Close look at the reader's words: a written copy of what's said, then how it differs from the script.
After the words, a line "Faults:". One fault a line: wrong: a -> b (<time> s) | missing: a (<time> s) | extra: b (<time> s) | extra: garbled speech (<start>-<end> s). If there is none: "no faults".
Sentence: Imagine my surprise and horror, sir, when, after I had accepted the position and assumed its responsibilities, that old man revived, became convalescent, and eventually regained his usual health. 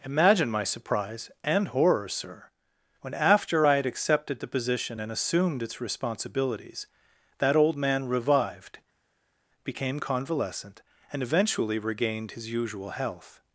Imagine my surprise and horror, sir, when, after I had accepted the position and assumed its responsibilities, that old man revived, became convalescent, and eventually regained his usual health.
Faults:
no faults